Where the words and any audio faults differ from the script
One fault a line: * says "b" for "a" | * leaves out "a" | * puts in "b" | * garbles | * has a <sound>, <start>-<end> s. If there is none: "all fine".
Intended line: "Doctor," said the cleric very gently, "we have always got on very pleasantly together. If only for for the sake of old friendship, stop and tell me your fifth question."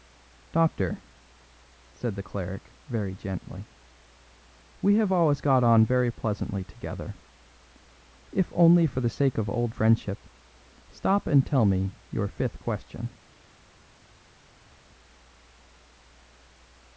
* leaves out "for"